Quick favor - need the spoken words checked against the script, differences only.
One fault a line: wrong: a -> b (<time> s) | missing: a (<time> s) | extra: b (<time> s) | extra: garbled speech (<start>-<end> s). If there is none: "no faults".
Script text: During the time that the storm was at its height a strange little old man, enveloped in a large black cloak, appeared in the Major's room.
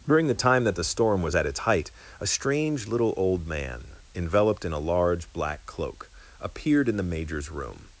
no faults